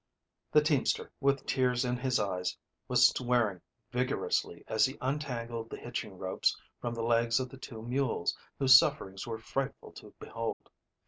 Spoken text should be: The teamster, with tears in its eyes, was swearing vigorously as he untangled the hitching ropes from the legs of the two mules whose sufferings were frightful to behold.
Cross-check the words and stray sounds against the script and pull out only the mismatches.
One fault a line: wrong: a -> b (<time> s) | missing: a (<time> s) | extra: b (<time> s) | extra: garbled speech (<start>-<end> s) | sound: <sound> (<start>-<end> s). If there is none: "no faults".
wrong: its -> his (2.0 s)
sound: dropout (10.5-10.6 s)